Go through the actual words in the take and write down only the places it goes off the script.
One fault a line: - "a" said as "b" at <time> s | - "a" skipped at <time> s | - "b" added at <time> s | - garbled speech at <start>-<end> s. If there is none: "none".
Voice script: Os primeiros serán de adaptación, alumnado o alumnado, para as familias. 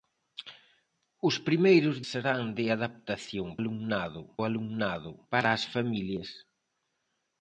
none